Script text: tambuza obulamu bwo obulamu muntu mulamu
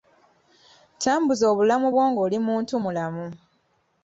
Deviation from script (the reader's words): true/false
true